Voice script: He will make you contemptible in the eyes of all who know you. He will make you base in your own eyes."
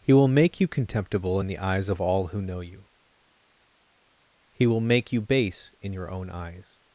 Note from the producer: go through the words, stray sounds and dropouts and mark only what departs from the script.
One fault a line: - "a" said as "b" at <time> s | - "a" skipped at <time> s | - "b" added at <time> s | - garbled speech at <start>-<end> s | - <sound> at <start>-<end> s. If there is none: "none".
none